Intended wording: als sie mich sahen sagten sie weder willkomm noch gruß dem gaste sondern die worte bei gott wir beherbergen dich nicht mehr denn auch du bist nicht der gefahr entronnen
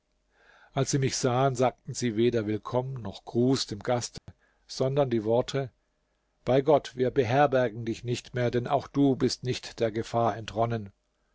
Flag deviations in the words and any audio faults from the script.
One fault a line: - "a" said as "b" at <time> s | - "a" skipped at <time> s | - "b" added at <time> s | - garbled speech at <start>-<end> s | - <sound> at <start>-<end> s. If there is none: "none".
- dropout at 4.2-4.3 s